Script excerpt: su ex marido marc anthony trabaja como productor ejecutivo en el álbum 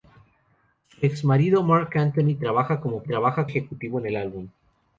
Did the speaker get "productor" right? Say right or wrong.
wrong